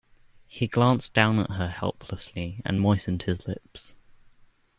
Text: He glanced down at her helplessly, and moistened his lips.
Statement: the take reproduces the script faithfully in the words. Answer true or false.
true